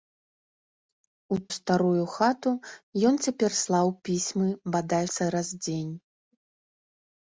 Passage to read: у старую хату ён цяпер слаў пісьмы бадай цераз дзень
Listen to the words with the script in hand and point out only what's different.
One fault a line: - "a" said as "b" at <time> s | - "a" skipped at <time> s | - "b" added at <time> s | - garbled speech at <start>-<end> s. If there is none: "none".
none